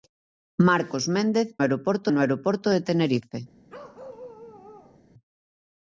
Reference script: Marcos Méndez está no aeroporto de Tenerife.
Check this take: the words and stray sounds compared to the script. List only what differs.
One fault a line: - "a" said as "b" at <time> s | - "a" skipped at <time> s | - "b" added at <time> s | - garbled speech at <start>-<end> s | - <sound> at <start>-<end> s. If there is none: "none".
- "está" said as "aeroporto" at 1.6 s
- bark at 3.7-5.0 s